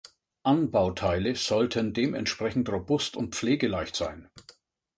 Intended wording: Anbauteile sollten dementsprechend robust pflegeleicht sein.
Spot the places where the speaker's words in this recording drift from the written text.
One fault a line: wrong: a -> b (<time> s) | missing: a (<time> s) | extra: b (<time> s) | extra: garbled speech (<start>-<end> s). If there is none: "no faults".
extra: und (3.2 s)